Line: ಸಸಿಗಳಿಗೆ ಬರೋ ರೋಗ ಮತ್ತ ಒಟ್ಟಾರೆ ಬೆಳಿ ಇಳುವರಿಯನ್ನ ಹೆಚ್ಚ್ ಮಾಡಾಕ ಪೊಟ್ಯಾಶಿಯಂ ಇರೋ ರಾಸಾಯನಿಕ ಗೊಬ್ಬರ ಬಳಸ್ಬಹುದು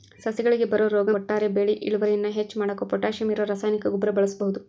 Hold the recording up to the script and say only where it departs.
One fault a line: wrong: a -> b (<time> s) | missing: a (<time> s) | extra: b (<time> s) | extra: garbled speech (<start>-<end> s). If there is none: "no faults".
missing: ಮತ್ತ (1.1 s)